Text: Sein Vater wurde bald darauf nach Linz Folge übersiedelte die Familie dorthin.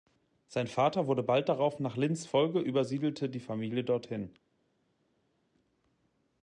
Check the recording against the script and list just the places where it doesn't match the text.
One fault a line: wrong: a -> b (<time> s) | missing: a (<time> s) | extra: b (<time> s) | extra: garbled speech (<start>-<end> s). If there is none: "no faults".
no faults